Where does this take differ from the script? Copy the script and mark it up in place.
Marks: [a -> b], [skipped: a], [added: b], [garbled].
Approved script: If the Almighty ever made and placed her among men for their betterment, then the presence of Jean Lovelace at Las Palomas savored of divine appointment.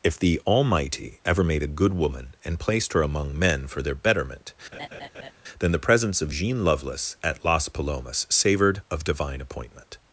If the Almighty ever made [added: a good woman] and placed her among men for their betterment, then the presence of Jean Lovelace at Las Palomas savored of divine appointment.